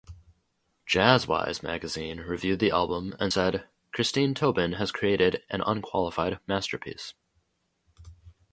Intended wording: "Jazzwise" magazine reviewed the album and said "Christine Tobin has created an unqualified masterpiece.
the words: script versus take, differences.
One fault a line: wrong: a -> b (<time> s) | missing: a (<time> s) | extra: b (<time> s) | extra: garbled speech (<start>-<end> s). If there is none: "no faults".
no faults